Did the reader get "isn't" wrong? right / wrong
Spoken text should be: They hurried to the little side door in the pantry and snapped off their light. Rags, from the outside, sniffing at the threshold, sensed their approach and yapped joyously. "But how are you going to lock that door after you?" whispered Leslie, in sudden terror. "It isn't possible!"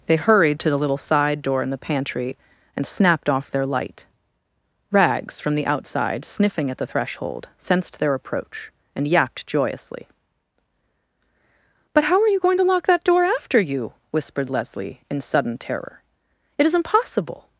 wrong